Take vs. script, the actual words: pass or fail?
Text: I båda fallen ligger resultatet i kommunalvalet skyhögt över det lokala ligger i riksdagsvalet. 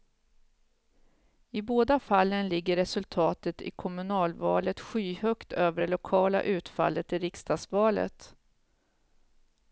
fail